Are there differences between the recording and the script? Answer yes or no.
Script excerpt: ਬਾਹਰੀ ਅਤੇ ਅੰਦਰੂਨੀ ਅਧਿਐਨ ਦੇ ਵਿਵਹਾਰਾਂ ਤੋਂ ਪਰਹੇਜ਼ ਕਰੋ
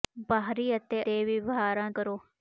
yes